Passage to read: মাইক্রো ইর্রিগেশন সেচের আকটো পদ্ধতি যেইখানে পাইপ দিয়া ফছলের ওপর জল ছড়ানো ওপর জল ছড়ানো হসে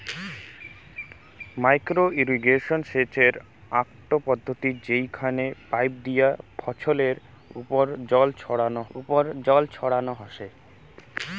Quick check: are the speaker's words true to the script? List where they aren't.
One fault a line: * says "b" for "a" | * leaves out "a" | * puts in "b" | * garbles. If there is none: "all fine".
all fine